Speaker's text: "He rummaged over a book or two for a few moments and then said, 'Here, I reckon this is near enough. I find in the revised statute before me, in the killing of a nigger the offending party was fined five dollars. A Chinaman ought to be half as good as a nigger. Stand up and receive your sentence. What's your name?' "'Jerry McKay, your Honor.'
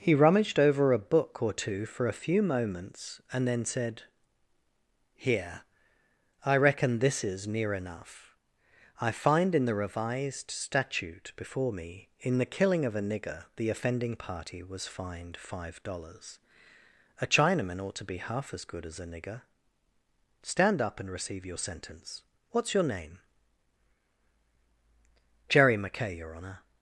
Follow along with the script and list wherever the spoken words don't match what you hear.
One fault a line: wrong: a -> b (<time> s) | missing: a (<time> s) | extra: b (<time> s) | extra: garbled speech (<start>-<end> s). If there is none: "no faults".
no faults